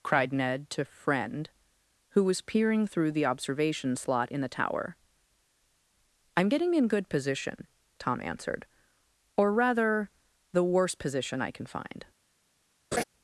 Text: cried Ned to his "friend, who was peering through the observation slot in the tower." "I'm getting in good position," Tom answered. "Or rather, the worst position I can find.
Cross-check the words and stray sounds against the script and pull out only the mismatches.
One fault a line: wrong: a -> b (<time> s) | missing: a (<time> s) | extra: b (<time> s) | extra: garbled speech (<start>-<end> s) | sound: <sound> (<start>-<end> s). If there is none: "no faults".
missing: his (0.8 s)
sound: laugh (12.9-13.0 s)